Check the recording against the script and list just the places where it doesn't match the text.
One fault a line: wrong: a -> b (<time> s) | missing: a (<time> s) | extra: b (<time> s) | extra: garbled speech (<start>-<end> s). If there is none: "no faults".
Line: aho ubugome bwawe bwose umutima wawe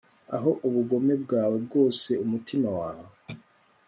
no faults